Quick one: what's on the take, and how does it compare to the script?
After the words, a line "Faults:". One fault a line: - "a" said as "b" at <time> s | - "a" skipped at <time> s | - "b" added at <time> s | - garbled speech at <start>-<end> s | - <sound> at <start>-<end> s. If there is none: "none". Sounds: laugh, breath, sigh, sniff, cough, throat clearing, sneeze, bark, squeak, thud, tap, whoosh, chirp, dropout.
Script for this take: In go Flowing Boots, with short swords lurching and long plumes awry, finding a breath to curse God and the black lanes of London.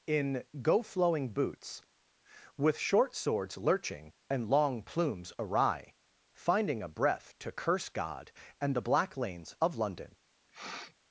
In go Flowing Boots, with short swords lurching and long plumes awry, finding a breath to curse God and the black lanes of London.
Faults:
- sniff at 10.5-10.9 s